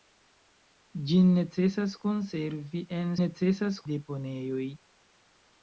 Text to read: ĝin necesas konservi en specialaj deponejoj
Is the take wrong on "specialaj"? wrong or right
wrong